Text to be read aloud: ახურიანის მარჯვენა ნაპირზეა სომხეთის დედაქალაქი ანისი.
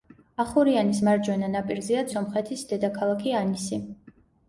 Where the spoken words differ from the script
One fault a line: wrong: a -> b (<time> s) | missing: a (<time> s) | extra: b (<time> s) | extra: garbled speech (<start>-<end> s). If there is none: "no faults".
no faults